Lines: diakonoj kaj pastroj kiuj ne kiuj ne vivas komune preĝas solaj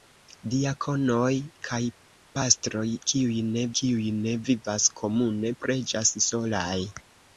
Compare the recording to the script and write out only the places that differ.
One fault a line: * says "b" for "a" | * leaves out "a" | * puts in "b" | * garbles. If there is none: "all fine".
all fine